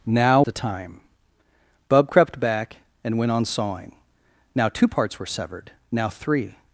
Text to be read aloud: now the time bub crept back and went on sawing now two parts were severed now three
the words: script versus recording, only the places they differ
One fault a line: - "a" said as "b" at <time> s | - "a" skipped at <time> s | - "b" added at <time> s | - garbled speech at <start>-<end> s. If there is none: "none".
none